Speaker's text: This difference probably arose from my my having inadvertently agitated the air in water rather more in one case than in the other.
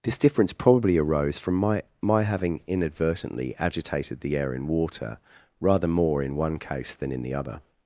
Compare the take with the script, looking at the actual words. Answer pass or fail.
pass